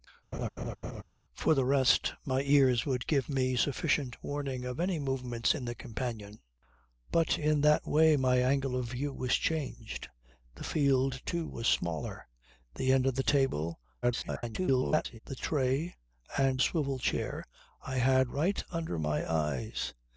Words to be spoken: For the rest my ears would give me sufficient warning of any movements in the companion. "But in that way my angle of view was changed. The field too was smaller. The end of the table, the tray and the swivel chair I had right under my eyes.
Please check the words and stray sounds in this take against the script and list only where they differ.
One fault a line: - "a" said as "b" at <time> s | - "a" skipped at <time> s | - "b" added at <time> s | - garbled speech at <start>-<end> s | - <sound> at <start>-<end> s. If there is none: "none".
- laugh at 0.3-1.0 s
- garbled speech at 14.0-15.2 s
- "the" skipped at 16.6 s